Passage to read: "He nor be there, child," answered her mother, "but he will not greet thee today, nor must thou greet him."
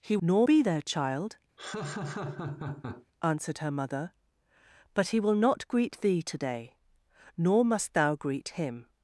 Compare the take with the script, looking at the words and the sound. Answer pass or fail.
fail